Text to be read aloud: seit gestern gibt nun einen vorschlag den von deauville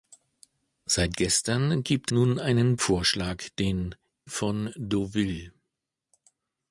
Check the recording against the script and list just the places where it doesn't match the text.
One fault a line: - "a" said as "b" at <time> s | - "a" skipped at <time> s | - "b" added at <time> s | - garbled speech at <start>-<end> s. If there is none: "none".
none